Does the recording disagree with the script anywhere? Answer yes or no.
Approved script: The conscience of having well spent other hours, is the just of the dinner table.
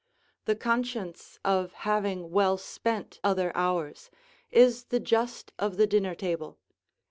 no